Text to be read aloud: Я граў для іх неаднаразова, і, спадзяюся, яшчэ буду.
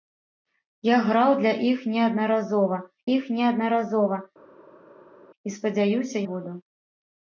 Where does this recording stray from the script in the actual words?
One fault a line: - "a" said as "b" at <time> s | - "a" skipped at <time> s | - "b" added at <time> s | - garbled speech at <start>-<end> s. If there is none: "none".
- "іх неаднаразова" added at 3.2 s
- "яшчэ" skipped at 6.2 s